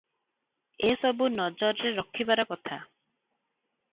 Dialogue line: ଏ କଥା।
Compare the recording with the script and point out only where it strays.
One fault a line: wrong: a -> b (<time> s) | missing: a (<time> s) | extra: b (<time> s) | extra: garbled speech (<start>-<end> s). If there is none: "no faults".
extra: ସବୁ ନଜରରେ ରଖିବାର (1.0 s)